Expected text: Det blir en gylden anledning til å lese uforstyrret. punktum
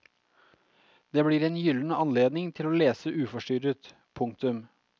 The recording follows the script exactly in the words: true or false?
true